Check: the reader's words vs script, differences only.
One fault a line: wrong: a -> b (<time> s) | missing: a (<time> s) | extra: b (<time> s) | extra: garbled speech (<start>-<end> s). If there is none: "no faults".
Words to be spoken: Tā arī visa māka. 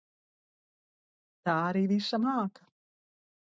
no faults